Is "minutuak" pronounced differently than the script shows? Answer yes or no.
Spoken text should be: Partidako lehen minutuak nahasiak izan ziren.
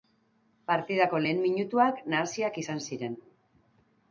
no